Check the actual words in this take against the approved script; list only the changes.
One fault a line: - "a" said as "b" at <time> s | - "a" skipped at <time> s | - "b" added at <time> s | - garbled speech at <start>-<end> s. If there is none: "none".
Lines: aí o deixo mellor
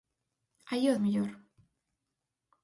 - "deixo" skipped at 1.0 s